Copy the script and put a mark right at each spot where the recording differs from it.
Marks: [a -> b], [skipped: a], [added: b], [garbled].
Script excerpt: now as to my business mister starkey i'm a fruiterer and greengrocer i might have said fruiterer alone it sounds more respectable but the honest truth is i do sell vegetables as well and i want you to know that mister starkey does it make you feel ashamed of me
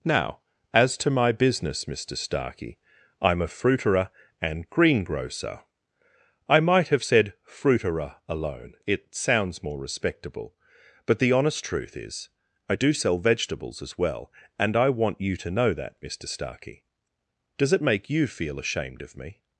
now as to my business mister starkey i'm a fruiterer and greengrocer i might have said fruiterer alone it sounds more respectable but the honest truth is i do sell vegetables as well and i want you to know that mister starkey does it make you feel ashamed of me